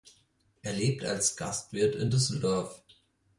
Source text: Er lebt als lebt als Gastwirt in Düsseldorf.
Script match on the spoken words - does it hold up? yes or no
no